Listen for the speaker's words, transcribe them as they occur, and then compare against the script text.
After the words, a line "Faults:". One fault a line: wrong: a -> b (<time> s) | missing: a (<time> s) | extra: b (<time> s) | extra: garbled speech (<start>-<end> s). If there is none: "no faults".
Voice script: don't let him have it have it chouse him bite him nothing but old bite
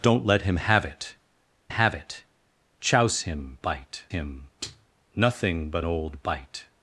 don't let him have it have it chouse him bite him nothing but old bite
Faults:
no faults